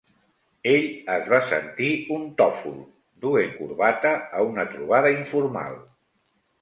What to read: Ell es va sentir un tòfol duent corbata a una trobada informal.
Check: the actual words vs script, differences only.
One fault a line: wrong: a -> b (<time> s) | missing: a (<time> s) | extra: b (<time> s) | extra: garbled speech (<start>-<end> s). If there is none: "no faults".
no faults